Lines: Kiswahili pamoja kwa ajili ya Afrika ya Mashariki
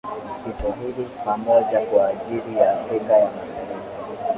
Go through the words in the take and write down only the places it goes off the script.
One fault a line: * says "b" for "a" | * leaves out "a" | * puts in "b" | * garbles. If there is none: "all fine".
all fine